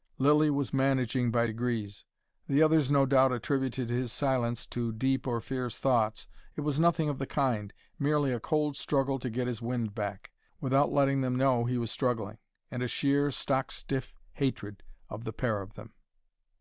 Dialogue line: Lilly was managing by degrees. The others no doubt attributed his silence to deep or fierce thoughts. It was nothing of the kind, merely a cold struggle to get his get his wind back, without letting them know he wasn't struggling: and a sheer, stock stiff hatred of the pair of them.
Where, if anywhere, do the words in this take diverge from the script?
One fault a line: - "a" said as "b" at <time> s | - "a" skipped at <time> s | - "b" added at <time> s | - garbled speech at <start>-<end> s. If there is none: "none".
- "get his" skipped at 9.6 s
- "wasn't" said as "was" at 11.8 s